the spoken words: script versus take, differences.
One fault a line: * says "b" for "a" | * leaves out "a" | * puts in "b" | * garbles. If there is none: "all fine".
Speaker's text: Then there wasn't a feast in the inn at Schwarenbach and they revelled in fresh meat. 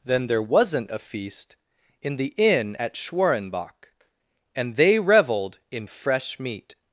all fine